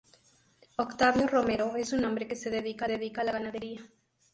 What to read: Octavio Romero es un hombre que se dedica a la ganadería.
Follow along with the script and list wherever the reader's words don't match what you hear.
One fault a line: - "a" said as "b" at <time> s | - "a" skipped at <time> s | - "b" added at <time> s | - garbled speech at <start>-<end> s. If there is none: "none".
- "dedica" added at 2.9 s